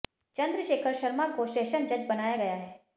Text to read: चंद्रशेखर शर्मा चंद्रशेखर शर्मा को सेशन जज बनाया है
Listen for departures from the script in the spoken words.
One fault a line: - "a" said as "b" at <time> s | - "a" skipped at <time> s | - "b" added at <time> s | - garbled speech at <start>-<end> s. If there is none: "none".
- "चंद्रशेखर शर्मा" skipped at 1.3 s
- "गया" added at 2.3 s